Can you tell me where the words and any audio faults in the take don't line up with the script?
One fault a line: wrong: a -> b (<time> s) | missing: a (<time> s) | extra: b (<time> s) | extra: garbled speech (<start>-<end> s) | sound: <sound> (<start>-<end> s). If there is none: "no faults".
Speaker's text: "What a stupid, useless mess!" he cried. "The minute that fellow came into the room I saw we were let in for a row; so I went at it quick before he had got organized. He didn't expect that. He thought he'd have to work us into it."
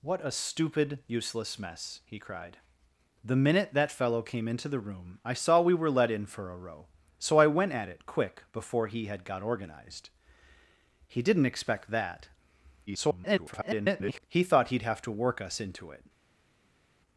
extra: garbled speech (12.9-14.2 s)